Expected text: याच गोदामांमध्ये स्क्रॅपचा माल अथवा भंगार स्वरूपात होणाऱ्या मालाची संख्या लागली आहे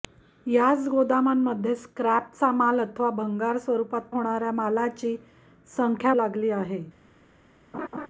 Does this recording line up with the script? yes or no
yes